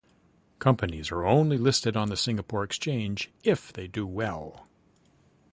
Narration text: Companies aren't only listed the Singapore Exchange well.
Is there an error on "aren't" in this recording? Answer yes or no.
yes